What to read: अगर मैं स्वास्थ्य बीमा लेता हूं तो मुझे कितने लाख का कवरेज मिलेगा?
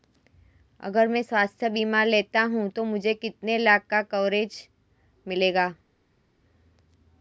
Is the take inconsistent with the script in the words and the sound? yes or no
no